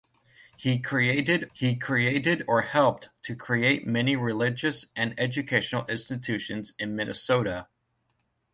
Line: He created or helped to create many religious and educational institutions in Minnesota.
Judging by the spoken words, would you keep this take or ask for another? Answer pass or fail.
fail